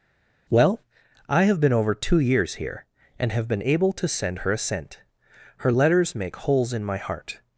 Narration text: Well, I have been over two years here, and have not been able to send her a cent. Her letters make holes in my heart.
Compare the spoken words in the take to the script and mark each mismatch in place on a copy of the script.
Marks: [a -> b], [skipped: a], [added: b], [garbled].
Well, I have been over two years here, and have [skipped: not] been able to send her a cent. Her letters make holes in my heart.